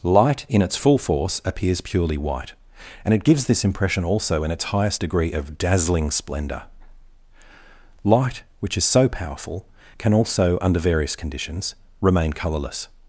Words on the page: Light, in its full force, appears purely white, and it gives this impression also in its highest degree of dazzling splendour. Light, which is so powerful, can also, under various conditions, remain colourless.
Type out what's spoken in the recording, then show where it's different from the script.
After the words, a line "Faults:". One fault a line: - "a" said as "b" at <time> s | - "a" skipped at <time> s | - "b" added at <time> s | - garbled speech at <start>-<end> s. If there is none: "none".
Light, in its full force, appears purely white, and it gives this impression also in its highest degree of dazzling splendour. Light, which is so powerful, can also, under various conditions, remain colourless.
Faults:
none